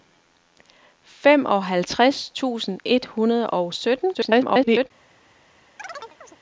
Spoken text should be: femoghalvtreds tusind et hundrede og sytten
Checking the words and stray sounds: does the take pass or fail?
fail